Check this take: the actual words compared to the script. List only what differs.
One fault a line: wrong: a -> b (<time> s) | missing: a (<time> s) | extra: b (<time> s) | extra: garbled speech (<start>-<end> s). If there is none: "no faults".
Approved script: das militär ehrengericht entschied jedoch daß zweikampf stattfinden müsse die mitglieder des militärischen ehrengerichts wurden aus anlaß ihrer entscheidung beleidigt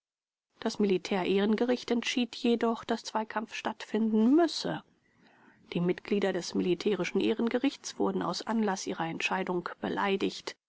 no faults